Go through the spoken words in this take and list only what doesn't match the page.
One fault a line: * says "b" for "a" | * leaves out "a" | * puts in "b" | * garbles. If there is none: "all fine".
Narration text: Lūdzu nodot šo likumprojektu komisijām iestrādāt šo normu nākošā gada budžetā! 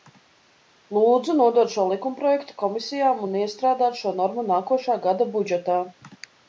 * puts in "un"